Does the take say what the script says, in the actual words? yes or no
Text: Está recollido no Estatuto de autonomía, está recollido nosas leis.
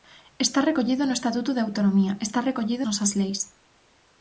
yes